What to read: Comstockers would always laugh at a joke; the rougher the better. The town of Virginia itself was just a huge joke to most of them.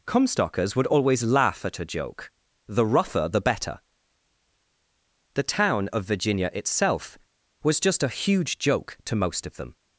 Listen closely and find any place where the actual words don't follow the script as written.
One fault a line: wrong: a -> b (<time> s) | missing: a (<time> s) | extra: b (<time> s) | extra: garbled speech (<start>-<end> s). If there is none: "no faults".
no faults